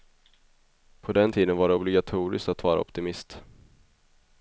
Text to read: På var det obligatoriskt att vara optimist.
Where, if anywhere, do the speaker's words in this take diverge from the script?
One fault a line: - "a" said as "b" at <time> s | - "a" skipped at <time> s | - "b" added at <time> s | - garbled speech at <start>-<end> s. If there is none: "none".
- "den tiden" added at 1.1 s